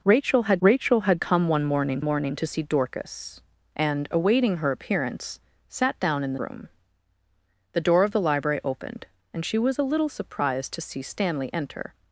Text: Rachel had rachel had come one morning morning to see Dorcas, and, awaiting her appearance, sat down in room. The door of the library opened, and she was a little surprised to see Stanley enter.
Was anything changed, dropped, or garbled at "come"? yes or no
no